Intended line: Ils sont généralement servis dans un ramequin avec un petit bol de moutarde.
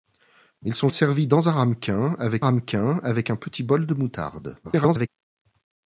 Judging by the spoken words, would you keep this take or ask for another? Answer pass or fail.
fail